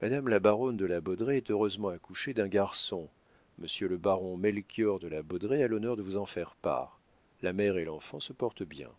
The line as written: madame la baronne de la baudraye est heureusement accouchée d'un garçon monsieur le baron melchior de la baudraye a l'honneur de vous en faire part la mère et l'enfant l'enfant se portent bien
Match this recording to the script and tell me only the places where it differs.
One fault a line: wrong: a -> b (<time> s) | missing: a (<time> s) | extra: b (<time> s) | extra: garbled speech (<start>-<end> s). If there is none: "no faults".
missing: l'enfant (8.2 s)